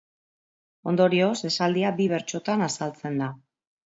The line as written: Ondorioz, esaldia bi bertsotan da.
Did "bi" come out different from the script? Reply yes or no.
no